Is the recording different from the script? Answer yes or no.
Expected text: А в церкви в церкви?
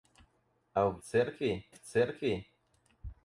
no